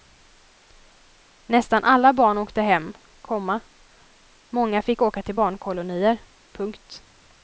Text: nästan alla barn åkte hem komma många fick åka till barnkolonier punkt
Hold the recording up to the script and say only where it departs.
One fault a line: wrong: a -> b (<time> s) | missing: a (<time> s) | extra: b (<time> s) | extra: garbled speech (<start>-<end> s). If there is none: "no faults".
no faults